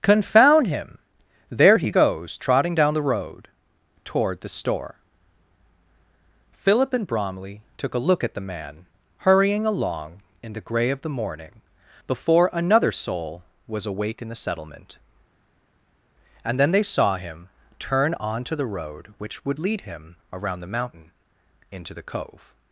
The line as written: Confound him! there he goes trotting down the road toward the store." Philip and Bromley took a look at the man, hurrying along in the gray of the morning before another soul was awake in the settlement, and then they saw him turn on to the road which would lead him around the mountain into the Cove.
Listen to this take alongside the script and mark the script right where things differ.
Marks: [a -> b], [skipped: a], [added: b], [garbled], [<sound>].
Confound him! there he goes trotting down the road toward the store." Philip and Bromley took a look at the man, hurrying along in the gray of the morning before another soul was awake in the settlement, and then they saw him turn on to the road which would lead him around the mountain into the Cove.